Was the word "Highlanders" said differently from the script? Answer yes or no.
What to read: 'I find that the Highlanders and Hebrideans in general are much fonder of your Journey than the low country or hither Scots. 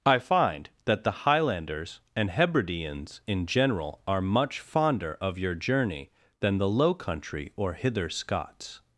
no